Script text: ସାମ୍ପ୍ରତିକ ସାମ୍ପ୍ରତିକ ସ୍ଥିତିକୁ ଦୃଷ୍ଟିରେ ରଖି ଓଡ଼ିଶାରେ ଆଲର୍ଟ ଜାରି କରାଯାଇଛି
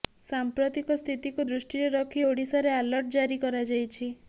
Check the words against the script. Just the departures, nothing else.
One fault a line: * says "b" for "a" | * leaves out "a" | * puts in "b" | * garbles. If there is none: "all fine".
* leaves out "ସାମ୍ପ୍ରତିକ"